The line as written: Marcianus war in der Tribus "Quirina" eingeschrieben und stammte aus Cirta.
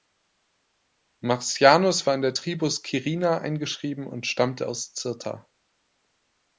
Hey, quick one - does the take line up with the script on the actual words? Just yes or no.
yes